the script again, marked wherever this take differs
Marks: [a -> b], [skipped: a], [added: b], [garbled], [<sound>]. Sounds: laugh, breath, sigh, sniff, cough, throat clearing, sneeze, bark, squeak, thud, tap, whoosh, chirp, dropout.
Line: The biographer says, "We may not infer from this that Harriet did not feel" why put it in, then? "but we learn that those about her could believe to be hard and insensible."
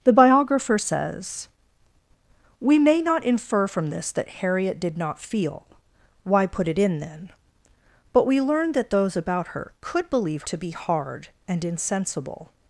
The biographer says, "We may not infer from this that Harriet did not feel" why put it in, then? "but we learn that those about her could believe to be hard and insensible."